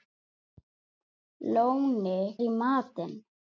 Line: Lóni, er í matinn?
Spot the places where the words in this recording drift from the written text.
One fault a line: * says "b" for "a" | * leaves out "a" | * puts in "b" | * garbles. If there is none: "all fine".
all fine